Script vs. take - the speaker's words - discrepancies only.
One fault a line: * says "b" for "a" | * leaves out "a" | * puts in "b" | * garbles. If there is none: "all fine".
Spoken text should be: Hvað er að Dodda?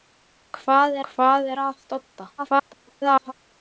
* puts in "hvað"
* garbles